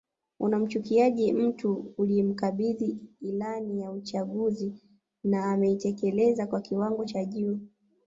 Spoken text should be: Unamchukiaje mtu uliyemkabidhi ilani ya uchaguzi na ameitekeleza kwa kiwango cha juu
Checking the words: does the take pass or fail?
pass